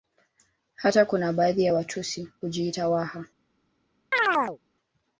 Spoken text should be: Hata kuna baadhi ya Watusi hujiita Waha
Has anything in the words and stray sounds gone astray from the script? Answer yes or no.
yes